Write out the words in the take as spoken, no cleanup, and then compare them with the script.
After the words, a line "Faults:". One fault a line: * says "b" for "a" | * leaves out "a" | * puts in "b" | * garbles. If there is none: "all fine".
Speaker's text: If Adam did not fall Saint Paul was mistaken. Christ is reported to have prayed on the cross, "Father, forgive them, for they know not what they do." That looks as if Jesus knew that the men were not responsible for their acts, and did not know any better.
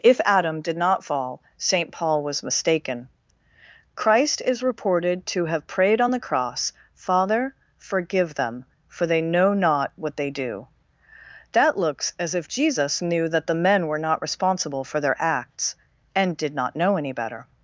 If Adam did not fall Saint Paul was mistaken. Christ is reported to have prayed on the cross, "Father, forgive them, for they know not what they do." That looks as if Jesus knew that the men were not responsible for their acts, and did not know any better.
Faults:
all fine